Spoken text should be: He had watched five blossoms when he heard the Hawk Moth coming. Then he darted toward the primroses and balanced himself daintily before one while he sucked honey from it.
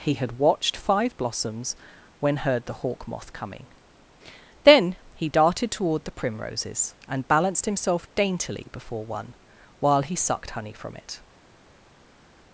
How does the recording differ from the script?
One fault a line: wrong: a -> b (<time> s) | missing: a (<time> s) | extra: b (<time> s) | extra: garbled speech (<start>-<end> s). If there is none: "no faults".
missing: he (2.4 s)